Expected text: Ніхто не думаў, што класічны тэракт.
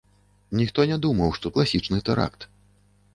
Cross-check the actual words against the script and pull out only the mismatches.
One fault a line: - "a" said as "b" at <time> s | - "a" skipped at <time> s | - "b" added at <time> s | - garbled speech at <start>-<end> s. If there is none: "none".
none